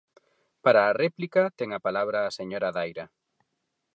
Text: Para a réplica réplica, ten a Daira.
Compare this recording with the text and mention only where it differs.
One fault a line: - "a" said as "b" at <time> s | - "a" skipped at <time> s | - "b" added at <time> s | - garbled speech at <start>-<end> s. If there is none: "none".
- "réplica" skipped at 1.4 s
- "palabra a señora" added at 1.9 s